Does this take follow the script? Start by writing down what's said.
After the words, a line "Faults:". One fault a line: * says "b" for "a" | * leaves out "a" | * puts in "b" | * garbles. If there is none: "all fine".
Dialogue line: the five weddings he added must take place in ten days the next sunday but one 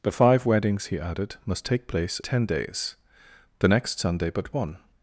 the five weddings he added must take place ten days the next sunday but one
Faults:
* leaves out "in"